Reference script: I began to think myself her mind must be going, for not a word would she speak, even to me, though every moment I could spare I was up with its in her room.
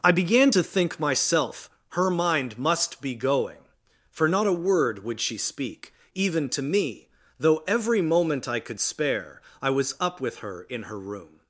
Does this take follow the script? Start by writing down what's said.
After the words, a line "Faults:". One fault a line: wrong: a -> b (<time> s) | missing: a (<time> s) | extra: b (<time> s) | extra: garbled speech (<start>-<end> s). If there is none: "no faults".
I began to think myself her mind must be going, for not a word would she speak, even to me, though every moment I could spare I was up with her in her room.
Faults:
wrong: its -> her (10.4 s)